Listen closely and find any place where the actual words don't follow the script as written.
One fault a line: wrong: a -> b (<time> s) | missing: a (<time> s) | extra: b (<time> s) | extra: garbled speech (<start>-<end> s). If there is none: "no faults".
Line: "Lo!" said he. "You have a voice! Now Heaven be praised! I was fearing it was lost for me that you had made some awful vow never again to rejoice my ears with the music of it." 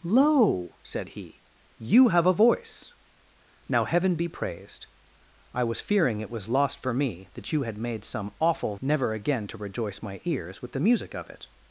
missing: vow (8.8 s)